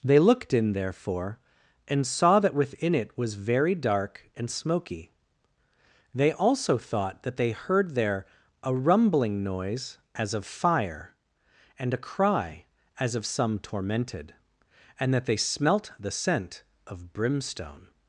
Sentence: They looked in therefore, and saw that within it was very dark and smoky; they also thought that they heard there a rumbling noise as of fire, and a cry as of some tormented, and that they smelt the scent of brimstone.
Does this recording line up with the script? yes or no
yes